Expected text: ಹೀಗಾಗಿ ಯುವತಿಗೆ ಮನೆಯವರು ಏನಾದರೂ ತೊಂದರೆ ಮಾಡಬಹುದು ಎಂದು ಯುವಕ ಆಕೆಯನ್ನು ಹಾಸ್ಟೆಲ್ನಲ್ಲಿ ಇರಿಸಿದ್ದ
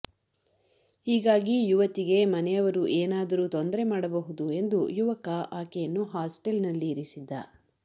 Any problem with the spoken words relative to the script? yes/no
no